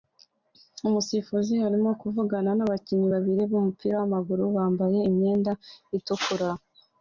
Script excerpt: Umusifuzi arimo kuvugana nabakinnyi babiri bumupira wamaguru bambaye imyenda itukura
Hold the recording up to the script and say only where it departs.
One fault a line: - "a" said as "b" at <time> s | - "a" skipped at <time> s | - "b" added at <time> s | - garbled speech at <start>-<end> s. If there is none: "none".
none